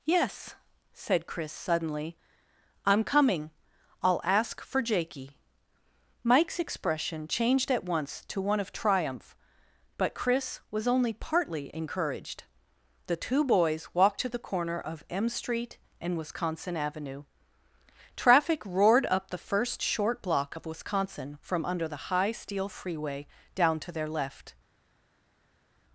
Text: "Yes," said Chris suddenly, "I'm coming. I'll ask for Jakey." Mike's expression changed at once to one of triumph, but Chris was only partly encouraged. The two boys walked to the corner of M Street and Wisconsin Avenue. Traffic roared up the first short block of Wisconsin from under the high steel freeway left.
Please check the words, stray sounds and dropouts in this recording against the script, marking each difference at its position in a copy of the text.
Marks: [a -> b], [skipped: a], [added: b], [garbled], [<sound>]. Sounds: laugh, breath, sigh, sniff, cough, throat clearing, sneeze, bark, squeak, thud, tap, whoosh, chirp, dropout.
"Yes," said Chris suddenly, "I'm coming. I'll ask for Jakey." Mike's expression changed at once to one of triumph, but Chris was only partly encouraged. The two boys walked to the corner of M Street and Wisconsin Avenue. Traffic roared up the first short block of Wisconsin from under the high steel freeway [added: down to their] left.